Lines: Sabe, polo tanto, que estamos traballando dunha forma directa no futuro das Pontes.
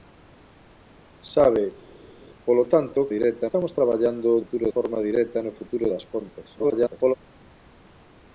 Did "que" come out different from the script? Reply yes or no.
yes